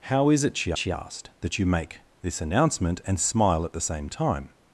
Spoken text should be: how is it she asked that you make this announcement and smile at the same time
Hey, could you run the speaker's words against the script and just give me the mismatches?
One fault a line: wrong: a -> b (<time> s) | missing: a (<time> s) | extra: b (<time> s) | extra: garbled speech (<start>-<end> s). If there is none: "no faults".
extra: she (0.8 s)